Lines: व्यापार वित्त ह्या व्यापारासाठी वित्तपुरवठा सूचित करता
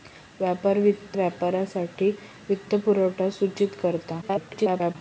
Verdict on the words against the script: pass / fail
fail